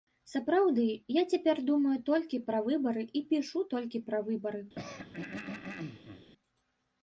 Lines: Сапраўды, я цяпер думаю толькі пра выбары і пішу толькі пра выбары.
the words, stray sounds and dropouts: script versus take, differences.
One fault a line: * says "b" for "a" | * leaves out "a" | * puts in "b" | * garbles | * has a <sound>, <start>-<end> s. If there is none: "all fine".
* has a throat clearing, 4.7-6.3 s